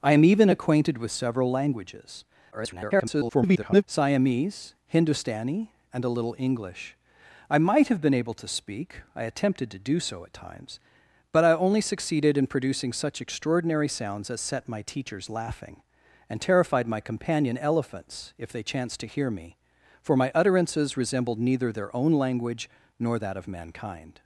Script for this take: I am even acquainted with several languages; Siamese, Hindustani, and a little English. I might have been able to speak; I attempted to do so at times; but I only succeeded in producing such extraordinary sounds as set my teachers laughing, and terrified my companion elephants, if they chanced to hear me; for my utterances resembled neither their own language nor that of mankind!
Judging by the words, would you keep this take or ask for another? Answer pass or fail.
fail